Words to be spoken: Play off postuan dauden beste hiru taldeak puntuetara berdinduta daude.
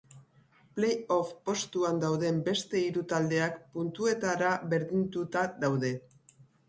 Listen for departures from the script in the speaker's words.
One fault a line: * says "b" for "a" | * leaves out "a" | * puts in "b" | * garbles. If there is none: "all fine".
all fine